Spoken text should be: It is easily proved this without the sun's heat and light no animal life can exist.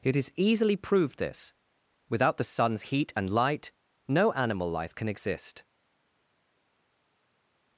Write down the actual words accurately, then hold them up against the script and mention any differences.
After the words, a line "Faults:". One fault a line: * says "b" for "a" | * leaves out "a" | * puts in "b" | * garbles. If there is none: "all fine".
It is easily proved this without the sun's heat and light no animal life can exist.
Faults:
all fine